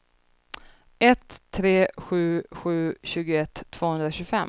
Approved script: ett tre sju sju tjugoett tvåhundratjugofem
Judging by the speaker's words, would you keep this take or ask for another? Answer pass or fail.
pass